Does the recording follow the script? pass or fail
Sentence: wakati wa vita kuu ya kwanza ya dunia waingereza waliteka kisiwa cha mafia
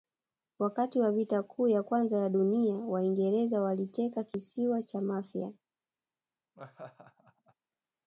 pass